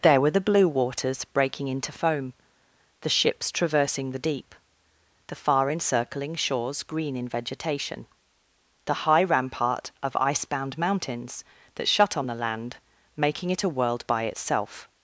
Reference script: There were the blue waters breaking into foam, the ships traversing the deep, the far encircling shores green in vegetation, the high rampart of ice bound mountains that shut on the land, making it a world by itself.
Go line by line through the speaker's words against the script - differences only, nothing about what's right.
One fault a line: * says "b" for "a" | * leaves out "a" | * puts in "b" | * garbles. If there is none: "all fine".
all fine